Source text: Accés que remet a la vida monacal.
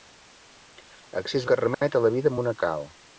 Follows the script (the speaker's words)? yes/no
yes